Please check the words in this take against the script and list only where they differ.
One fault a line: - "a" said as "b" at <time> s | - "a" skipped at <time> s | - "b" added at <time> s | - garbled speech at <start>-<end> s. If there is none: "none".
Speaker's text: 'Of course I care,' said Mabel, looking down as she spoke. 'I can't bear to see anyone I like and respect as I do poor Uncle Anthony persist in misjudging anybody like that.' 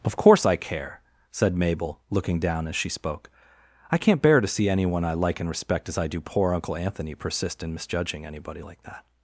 none